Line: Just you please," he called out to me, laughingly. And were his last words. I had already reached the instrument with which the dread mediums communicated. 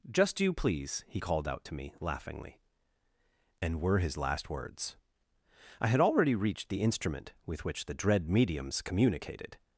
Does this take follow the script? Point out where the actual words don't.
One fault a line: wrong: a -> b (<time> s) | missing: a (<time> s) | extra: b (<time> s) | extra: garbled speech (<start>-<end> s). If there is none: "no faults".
no faults